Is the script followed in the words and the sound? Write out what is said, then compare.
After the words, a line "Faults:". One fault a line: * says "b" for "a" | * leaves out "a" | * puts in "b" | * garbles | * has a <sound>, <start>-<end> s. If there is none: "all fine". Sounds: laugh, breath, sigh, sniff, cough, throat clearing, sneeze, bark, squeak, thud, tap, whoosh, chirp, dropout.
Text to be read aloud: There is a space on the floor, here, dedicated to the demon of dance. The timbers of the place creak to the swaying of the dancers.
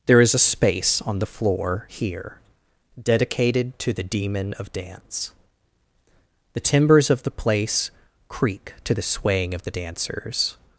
There is a space on the floor, here, dedicated to the demon of dance. The timbers of the place creak to the swaying of the dancers.
Faults:
all fine